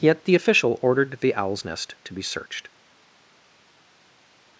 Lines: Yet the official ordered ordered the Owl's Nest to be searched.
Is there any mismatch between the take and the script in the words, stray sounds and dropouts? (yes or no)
yes